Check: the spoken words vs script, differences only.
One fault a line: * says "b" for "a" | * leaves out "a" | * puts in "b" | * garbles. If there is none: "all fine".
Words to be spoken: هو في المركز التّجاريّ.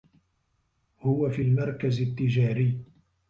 all fine